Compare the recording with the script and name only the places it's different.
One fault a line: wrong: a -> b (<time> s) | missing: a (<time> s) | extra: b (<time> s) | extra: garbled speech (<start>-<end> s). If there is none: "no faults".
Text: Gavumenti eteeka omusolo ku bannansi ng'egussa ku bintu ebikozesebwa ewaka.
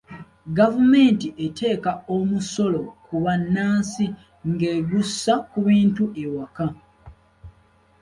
missing: ebikozesebwa (6.0 s)